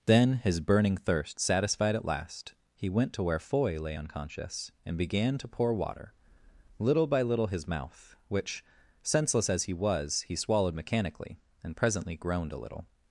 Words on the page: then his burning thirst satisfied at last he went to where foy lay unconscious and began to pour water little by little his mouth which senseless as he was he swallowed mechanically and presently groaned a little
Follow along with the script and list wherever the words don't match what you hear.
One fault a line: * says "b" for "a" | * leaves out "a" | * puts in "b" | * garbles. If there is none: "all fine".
all fine